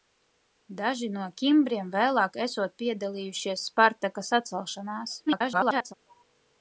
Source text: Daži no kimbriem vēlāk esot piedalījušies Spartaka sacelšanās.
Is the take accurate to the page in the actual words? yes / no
no